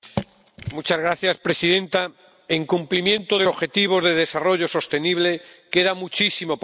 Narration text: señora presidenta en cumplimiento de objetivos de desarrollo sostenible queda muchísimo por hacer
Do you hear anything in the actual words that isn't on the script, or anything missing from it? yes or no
no